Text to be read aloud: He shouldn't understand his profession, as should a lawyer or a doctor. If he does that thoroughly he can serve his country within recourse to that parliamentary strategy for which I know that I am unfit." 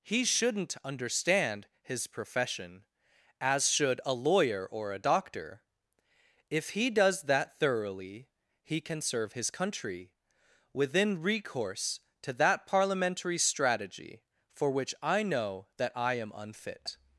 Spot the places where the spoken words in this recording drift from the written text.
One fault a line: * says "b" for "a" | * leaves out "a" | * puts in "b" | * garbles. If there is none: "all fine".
all fine